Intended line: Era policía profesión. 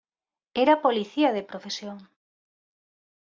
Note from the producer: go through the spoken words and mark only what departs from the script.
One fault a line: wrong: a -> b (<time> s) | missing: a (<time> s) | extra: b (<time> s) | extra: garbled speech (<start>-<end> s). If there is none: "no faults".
extra: de (1.3 s)